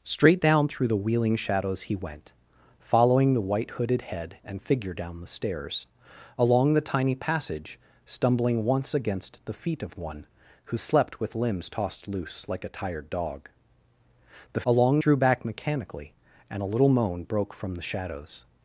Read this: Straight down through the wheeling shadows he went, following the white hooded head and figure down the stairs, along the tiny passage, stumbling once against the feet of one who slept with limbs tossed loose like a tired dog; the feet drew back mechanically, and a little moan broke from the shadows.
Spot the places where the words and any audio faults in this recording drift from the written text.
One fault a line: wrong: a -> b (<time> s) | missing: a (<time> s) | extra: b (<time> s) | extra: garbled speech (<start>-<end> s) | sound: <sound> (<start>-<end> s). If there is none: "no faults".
wrong: feet -> along (14.7 s)